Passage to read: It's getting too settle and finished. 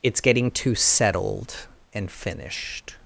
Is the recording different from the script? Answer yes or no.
yes